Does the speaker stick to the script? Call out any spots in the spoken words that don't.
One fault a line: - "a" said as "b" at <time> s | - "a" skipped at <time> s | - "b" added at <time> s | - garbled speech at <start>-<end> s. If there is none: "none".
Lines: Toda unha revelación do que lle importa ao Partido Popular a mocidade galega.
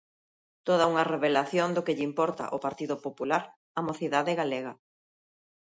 none